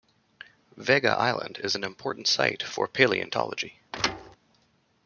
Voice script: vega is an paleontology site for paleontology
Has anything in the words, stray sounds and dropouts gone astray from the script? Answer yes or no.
yes